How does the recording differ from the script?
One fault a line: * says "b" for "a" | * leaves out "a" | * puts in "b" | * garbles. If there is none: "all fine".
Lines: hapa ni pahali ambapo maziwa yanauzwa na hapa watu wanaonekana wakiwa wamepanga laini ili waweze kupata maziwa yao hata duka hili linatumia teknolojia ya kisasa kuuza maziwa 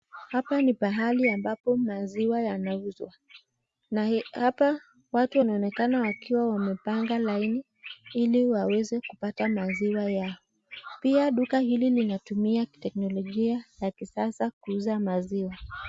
* says "pia" for "hata"